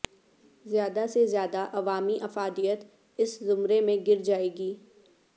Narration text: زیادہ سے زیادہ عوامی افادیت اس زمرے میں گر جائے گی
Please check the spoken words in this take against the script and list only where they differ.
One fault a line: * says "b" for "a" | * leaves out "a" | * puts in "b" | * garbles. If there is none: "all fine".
all fine